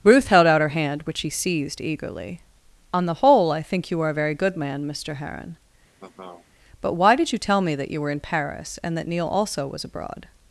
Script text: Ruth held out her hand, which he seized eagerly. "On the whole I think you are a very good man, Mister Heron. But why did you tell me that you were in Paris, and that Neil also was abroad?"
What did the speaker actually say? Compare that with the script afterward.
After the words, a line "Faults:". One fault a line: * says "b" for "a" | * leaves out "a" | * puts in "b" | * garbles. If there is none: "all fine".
Ruth held out her hand, which he seized eagerly. "On the whole I think you are a very good man, Mister Heron. But why did you tell me that you were in Paris, and that Neil also was abroad?"
Faults:
all fine